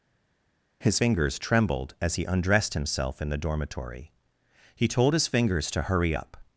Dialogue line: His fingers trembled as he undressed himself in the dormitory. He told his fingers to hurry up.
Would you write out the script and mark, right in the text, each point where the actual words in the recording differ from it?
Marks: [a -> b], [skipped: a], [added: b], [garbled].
His fingers trembled as he undressed himself in the dormitory. He told his fingers to hurry up.